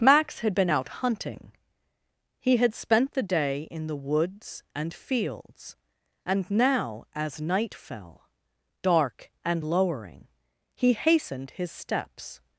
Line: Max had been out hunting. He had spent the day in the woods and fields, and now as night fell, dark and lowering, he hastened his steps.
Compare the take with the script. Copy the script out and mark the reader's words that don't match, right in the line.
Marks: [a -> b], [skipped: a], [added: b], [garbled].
Max had been out hunting. He had spent the day in the woods and fields, and now as night fell, dark and lowering, he hastened his steps.